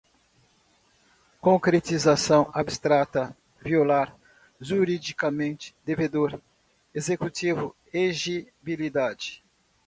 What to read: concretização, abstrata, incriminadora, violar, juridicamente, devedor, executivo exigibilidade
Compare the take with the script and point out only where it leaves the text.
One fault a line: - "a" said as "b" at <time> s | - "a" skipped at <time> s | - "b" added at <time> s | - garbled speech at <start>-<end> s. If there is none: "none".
- "incriminadora" skipped at 3.4 s